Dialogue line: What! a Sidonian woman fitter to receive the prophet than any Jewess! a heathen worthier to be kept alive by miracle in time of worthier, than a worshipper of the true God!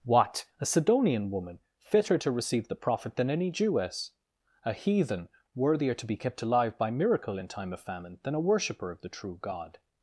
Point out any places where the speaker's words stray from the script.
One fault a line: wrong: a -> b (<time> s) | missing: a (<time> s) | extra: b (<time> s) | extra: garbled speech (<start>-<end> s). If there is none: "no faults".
wrong: worthier -> famine (7.8 s)